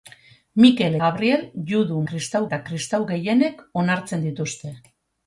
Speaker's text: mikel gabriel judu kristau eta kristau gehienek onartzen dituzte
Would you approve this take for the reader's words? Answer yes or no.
yes